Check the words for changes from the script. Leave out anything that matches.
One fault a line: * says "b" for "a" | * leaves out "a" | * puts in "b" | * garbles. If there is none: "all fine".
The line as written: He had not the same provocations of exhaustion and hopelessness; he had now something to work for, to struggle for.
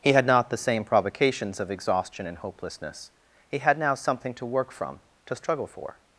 * says "from" for "for"